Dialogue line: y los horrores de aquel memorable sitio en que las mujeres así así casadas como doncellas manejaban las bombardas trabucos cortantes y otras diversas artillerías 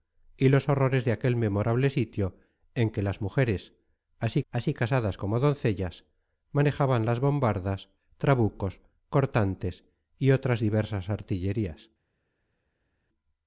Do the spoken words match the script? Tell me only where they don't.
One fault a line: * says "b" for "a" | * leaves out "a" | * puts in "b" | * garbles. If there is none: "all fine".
all fine